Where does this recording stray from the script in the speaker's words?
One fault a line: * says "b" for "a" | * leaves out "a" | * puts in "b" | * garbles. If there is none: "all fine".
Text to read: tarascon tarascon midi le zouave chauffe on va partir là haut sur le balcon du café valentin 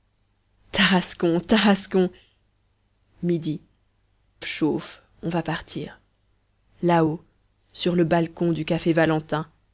* leaves out "le zouave"